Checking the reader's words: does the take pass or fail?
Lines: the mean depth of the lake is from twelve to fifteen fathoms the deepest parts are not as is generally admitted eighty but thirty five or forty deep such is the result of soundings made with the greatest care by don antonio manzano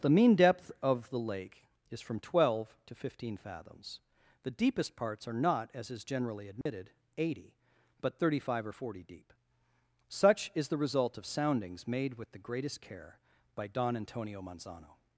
pass